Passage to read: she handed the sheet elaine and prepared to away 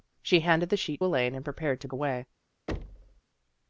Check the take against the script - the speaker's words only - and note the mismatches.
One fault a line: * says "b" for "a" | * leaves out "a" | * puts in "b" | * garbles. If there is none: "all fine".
all fine